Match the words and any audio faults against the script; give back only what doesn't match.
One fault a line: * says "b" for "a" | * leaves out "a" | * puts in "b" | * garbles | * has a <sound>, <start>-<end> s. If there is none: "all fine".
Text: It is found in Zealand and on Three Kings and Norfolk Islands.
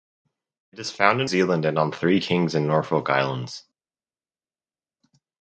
all fine